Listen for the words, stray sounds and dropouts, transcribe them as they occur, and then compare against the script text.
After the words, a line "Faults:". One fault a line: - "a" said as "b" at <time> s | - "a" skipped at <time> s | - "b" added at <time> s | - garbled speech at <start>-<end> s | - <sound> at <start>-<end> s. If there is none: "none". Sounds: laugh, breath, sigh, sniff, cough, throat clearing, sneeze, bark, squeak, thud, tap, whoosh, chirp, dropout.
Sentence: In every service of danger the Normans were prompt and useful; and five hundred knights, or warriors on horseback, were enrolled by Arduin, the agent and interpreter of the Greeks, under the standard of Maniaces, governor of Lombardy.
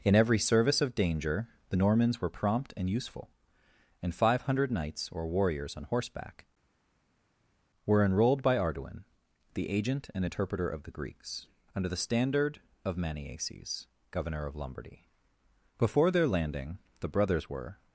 In every service of danger the Normans were prompt and useful; and five hundred knights, or warriors on horseback, were enrolled by Arduin, the agent and interpreter of the Greeks, under the standard of Maniaces, governor of Lombardy. Before their landing, the brothers were
Faults:
- "Before their landing the brothers were" added at 15.8 s